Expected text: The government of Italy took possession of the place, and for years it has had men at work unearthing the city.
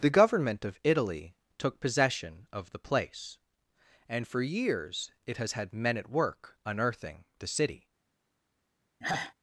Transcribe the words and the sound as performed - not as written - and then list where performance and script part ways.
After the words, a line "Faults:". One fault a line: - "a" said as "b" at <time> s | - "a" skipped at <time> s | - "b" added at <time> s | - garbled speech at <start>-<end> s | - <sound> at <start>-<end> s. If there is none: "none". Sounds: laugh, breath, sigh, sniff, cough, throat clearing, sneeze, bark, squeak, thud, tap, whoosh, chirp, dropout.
The government of Italy took possession of the place, and for years it has had men at work unearthing the city.
Faults:
- sigh at 9.0-9.3 s